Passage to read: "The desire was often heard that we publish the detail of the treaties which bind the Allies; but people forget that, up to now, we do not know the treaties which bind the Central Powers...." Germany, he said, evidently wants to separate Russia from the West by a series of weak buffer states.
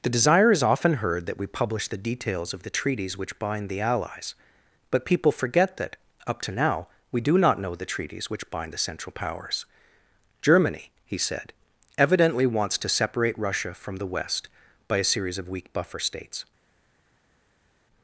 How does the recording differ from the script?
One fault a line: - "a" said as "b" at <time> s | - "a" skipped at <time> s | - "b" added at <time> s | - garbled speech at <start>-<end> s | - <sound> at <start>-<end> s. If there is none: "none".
- "was" said as "is" at 0.5 s
- "detail" said as "details" at 2.0 s